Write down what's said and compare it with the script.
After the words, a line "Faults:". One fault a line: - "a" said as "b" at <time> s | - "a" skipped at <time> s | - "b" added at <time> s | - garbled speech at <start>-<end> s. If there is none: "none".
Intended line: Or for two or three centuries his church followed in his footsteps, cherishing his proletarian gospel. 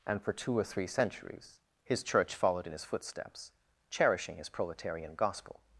And for two or three centuries his church followed in his footsteps, cherishing his proletarian gospel.
Faults:
- "Or" said as "And" at 0.1 s